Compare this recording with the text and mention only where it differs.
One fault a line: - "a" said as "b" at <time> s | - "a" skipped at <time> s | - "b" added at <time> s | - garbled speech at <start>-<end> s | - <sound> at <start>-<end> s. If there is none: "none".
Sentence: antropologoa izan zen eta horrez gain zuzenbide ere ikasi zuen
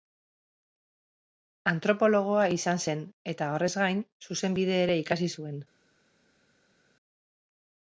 none